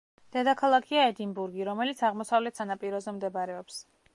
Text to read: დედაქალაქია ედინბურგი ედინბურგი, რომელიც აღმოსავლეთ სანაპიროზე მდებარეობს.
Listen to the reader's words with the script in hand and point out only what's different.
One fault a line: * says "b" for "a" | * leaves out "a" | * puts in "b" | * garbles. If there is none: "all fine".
* leaves out "ედინბურგი"